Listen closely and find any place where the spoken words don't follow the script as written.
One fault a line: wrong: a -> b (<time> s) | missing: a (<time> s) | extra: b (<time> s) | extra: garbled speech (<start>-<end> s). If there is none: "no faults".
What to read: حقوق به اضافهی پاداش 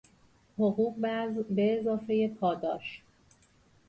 no faults